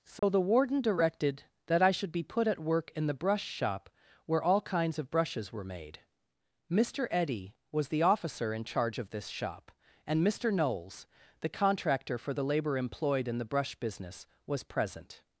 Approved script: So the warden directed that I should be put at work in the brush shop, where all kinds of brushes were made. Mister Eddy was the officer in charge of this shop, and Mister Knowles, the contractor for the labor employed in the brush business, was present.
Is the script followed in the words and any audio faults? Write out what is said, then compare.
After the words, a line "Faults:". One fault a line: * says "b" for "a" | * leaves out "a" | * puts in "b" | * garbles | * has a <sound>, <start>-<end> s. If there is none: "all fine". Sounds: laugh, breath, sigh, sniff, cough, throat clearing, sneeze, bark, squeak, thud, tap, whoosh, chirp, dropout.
So the warden directed that I should be put at work in the brush shop, where all kinds of brushes were made. Mister Eddy was the officer in charge of this shop, and Mister Knowles, the contractor for the labor employed in the brush business, was present.
Faults:
* has a dropout, 0.2-0.2 s